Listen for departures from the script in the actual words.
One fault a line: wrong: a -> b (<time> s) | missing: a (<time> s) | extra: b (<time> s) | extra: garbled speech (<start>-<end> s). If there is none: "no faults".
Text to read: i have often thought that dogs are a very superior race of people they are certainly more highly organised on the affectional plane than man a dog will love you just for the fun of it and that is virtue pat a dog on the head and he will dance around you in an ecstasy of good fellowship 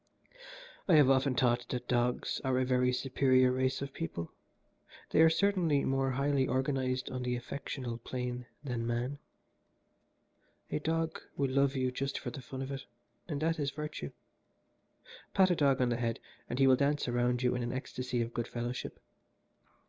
no faults